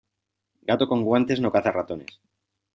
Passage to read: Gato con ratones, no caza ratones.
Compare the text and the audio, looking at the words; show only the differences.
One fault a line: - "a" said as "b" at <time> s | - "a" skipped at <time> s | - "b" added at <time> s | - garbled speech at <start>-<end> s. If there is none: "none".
- "ratones" said as "guantes" at 1.0 s